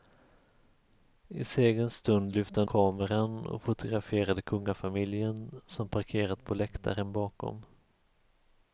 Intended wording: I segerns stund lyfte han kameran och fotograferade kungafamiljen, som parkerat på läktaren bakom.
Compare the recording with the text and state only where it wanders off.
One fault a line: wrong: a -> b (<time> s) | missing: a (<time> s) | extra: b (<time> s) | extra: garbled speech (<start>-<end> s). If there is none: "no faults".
no faults